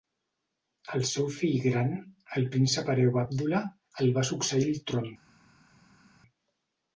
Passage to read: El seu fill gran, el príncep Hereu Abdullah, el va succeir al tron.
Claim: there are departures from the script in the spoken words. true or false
false